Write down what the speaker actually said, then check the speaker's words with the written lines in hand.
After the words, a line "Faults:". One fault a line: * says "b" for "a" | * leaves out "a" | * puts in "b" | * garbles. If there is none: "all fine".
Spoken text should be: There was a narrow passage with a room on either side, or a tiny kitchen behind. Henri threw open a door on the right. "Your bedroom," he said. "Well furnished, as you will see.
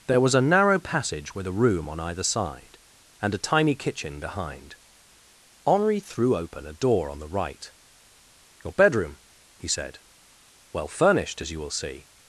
There was a narrow passage with a room on either side, and a tiny kitchen behind. Henri threw open a door on the right. "Your bedroom," he said. "Well furnished, as you will see.
Faults:
* says "and" for "or"